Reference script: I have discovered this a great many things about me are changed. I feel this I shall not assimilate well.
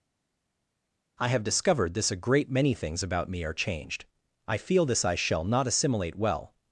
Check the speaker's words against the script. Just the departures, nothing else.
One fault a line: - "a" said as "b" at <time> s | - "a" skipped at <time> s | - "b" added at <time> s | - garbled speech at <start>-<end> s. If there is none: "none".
none